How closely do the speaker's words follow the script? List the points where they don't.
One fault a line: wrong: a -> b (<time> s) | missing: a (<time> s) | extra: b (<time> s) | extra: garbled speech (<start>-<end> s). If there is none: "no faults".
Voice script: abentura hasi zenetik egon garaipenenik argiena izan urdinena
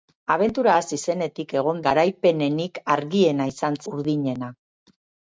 no faults